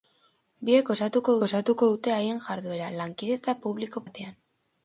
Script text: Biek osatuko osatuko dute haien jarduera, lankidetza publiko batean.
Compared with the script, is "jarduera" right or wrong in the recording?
right